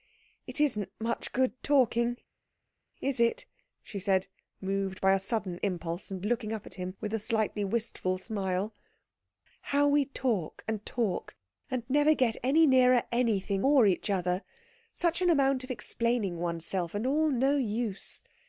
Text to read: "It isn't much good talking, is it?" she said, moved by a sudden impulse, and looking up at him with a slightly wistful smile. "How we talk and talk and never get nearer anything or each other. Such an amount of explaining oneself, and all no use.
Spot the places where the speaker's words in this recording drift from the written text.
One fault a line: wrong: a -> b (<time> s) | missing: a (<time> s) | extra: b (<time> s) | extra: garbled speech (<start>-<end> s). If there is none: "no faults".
extra: any (12.4 s)